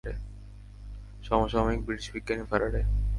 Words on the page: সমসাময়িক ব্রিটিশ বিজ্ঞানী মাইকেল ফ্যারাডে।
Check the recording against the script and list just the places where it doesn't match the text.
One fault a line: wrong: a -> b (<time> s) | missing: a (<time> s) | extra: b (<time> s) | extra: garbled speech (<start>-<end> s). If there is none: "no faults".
missing: মাইকেল (2.4 s)